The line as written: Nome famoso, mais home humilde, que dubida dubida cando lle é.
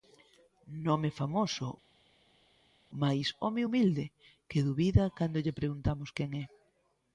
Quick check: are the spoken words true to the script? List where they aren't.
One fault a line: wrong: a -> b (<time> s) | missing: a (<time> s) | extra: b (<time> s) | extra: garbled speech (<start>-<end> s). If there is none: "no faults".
missing: dubida (5.1 s)
extra: preguntamos quen (5.6 s)